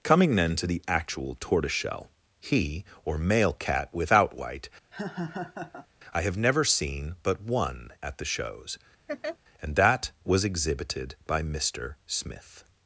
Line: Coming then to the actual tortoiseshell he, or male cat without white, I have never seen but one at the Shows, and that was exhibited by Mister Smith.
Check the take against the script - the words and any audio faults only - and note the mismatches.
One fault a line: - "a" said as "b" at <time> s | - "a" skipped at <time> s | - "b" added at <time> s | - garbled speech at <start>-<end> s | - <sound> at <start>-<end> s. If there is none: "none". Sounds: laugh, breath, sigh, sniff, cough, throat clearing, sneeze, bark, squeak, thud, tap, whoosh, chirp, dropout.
- laugh at 4.9-5.9 s
- laugh at 9.1-9.4 s